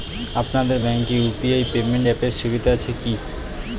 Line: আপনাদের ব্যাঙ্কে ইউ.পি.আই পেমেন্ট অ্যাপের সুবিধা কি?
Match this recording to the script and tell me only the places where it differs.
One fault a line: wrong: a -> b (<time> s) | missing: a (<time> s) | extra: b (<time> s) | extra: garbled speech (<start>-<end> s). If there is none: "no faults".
extra: আছে (2.8 s)